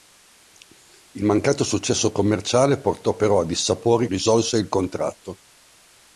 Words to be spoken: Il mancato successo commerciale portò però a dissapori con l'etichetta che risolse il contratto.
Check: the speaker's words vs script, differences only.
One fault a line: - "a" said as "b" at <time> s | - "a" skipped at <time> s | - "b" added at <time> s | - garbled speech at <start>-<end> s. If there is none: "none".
- "con l'etichetta che" skipped at 4.1 s